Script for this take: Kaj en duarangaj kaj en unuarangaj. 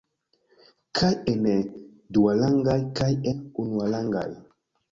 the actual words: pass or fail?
fail